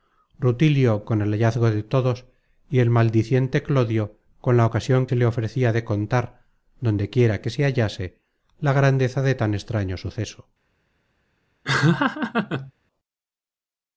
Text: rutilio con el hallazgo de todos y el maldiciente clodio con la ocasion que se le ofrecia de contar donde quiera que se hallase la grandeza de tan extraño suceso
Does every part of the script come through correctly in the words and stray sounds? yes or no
no